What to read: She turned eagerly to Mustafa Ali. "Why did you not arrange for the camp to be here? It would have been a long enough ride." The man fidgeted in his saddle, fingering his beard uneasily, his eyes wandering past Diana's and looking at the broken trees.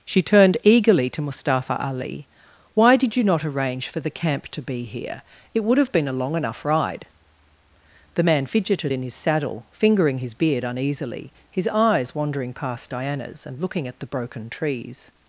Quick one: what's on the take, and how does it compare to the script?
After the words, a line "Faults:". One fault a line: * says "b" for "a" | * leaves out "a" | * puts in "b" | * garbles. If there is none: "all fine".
She turned eagerly to Mustafa Ali. "Why did you not arrange for the camp to be here? It would have been a long enough ride." The man fidgeted in his saddle, fingering his beard uneasily, his eyes wandering past Diana's and looking at the broken trees.
Faults:
all fine